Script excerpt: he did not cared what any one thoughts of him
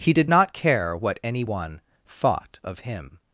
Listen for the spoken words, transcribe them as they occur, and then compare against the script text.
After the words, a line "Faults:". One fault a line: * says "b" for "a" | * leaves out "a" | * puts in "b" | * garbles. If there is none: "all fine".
he did not care what any one thought of him
Faults:
* says "care" for "cared"
* says "thought" for "thoughts"